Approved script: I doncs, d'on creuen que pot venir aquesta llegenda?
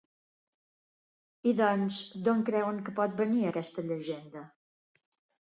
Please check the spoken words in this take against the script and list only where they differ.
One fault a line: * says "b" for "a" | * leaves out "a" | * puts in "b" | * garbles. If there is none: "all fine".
all fine